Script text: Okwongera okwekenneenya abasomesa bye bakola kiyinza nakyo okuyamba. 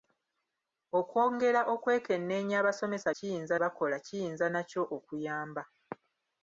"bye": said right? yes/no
no